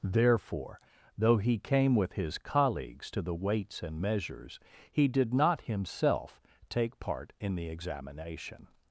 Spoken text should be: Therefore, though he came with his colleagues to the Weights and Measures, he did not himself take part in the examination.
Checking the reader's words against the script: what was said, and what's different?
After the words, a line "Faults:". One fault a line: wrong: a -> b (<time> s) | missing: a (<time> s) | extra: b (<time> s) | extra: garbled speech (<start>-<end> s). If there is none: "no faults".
Therefore, though he came with his colleagues to the Weights and Measures, he did not himself take part in the examination.
Faults:
no faults